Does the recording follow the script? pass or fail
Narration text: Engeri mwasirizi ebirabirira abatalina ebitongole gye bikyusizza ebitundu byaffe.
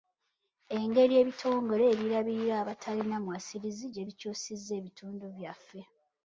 fail